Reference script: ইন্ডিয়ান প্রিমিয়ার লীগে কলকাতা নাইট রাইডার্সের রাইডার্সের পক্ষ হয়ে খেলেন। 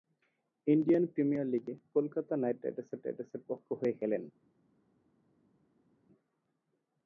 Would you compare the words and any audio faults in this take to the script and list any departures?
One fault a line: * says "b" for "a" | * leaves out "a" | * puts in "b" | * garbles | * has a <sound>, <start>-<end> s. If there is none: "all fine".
all fine